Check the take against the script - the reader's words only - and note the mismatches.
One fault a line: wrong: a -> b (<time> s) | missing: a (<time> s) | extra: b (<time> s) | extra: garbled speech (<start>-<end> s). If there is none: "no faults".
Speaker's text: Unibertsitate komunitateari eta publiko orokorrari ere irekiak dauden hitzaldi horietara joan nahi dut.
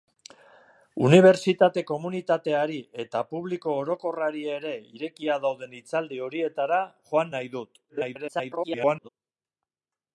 extra: garbled speech (7.9-9.1 s)